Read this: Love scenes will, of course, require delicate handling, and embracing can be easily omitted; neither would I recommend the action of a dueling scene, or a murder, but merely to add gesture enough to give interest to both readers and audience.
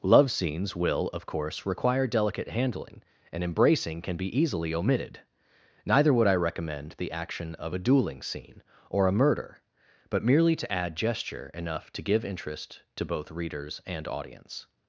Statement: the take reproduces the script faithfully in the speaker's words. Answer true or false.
true